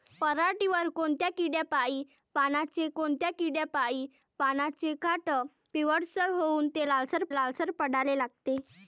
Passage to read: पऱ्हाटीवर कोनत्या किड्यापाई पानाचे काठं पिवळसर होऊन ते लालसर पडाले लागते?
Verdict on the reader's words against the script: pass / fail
fail